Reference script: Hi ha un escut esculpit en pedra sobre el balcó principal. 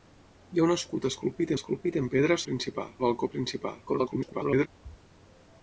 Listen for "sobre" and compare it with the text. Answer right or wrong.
wrong